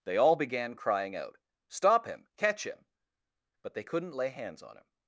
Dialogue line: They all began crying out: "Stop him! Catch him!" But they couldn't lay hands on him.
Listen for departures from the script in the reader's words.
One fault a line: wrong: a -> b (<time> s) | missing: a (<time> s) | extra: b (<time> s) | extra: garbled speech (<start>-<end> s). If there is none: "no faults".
no faults